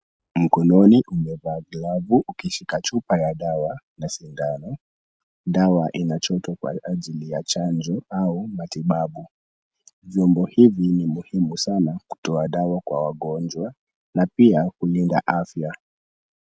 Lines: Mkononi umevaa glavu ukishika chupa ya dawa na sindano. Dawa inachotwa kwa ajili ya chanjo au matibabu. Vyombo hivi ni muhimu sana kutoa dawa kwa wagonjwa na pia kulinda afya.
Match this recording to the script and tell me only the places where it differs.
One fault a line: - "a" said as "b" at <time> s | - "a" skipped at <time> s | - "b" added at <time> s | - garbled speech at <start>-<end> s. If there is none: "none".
none